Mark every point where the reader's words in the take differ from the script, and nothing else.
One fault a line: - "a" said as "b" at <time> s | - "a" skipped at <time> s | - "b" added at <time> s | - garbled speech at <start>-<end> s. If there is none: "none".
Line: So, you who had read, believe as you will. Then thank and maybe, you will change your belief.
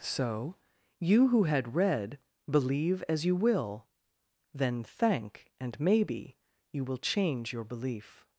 none